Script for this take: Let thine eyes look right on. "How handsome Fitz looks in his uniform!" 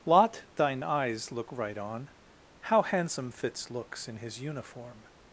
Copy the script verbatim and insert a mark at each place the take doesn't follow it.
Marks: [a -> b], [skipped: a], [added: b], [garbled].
[Let -> Lot] thine eyes look right on. "How handsome Fitz looks in his uniform!"